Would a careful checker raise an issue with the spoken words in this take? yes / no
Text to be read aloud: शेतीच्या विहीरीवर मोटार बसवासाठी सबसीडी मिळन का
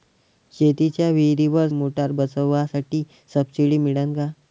no